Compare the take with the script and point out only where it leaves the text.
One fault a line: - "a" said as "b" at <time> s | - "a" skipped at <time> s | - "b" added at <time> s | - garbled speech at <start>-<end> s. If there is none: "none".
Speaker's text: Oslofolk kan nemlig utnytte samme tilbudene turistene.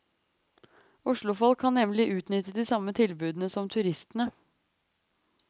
- "de" added at 2.5 s
- "som" added at 3.5 s